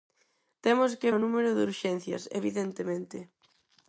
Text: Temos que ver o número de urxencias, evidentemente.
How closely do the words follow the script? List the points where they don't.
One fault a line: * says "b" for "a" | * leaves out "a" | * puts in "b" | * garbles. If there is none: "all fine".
* leaves out "ver"